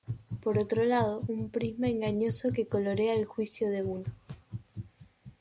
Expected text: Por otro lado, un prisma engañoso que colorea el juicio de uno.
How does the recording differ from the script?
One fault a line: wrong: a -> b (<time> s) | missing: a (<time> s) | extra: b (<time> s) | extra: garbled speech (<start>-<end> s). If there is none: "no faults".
no faults